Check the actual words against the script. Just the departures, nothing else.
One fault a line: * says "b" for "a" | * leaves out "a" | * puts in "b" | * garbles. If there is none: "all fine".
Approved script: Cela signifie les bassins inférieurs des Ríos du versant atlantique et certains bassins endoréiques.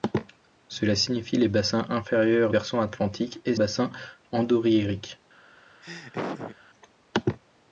* leaves out "des Ríos du"
* leaves out "certains"